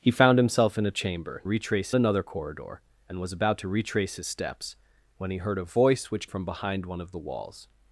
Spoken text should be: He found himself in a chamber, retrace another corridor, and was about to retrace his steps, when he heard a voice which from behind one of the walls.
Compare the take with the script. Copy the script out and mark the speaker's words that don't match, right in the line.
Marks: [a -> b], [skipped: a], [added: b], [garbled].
He found himself in a chamber, retrace another corridor, and was about to retrace his steps, when he heard a voice which from behind one of the walls.